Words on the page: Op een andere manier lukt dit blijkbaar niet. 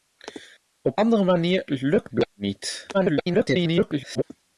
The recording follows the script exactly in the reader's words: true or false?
false